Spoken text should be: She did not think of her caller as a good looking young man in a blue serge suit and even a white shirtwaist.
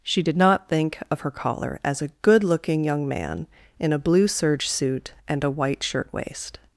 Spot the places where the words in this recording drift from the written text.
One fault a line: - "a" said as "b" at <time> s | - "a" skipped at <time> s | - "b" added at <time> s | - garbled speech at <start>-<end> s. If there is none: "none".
- "even" skipped at 5.4 s